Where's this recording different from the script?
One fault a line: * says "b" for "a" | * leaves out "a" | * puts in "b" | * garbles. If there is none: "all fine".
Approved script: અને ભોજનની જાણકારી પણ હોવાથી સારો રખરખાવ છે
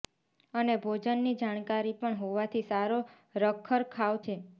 all fine